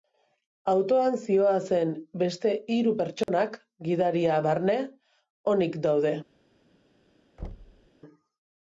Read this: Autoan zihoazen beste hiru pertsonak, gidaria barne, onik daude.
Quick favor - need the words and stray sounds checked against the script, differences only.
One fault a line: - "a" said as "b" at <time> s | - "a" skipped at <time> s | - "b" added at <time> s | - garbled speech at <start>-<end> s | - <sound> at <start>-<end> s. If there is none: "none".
- dropout at 3.2-3.3 s
- thud at 7.4-7.9 s